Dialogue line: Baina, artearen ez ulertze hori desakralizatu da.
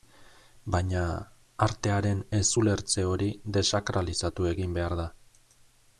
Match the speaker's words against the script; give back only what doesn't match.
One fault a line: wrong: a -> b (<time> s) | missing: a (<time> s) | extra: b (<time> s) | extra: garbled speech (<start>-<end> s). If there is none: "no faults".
extra: egin behar (4.5 s)